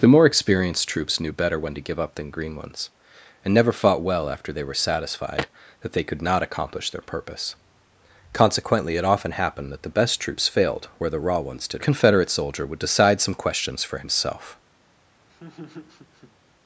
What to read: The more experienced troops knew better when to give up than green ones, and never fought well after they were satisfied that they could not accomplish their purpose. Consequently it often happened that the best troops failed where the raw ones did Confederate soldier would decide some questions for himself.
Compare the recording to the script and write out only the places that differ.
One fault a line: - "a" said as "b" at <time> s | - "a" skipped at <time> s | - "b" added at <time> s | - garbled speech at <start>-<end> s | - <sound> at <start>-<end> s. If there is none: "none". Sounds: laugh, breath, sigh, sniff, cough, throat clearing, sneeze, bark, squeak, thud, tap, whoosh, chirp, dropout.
- laugh at 15.3-16.4 s